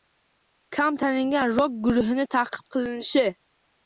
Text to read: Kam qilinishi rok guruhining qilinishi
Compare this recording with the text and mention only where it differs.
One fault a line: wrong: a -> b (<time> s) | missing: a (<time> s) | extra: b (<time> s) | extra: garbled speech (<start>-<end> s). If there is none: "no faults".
wrong: qilinishi -> tanilgan (1.0 s)
extra: ta'qib (2.4 s)